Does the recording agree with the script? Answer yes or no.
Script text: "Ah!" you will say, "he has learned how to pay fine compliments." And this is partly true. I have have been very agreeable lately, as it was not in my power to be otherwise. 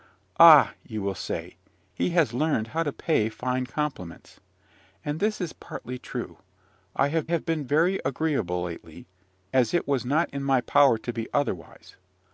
yes